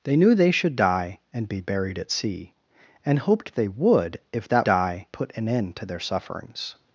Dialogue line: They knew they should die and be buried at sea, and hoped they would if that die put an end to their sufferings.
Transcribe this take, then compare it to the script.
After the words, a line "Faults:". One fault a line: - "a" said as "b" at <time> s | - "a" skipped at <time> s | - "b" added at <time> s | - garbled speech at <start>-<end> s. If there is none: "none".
They knew they should die and be buried at sea, and hoped they would if that die put an end to their sufferings.
Faults:
none